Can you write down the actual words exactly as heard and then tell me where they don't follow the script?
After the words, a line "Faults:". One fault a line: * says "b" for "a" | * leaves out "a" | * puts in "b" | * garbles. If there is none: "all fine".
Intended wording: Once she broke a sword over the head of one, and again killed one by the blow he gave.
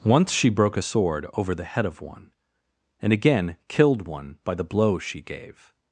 Once she broke a sword over the head of one, and again killed one by the blow she gave.
Faults:
* says "she" for "he"